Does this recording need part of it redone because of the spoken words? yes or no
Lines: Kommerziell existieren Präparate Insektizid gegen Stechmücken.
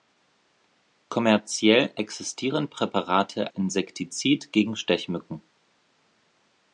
no